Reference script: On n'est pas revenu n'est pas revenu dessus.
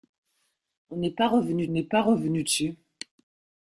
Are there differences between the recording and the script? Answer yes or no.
no